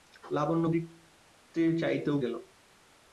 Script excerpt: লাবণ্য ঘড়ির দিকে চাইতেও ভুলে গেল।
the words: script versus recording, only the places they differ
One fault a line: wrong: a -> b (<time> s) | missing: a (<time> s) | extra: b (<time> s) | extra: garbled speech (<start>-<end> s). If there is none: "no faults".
missing: ঘড়ির (0.7 s)
missing: ভুলে (2.2 s)